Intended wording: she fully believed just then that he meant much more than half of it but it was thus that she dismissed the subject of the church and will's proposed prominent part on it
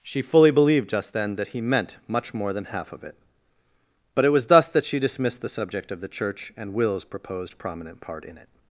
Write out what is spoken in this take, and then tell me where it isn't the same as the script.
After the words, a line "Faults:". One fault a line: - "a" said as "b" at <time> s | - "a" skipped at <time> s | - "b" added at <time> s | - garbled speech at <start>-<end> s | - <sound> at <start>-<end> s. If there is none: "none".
she fully believed just then that he meant much more than half of it but it was thus that she dismissed the subject of the church and will's proposed prominent part in it
Faults:
- "on" said as "in" at 8.2 s